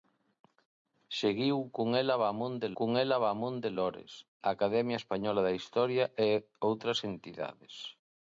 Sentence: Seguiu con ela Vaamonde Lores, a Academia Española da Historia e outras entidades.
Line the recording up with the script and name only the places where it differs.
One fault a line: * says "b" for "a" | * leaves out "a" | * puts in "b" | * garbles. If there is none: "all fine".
* puts in "con ela Vaamonde"